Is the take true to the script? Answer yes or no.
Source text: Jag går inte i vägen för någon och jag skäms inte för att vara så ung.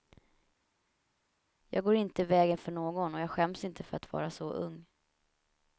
yes